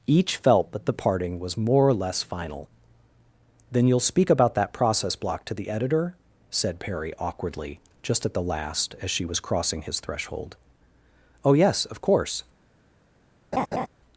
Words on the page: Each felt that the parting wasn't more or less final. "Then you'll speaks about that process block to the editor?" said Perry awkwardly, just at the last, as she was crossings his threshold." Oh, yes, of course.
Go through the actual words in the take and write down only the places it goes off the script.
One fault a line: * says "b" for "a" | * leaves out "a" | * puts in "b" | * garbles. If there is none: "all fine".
* says "was" for "wasn't"
* says "speak" for "speaks"
* says "crossing" for "crossings"